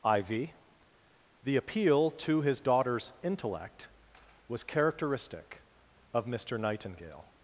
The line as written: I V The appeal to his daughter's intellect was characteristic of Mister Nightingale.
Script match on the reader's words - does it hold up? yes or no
yes